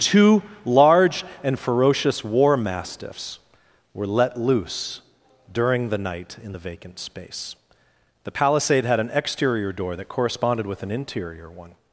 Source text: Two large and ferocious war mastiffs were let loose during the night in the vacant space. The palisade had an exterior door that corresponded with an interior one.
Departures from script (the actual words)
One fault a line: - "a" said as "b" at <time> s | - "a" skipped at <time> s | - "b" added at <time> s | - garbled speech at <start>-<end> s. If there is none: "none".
none